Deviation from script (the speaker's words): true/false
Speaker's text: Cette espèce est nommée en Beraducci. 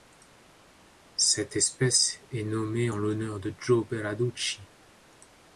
true